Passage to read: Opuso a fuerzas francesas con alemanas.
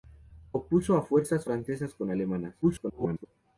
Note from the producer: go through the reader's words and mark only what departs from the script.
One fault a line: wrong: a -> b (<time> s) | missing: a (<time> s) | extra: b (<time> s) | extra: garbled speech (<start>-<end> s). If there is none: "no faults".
extra: garbled speech (2.6-3.3 s)